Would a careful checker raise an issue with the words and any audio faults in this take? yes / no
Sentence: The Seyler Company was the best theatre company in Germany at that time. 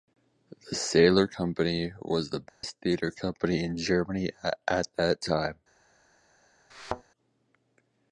yes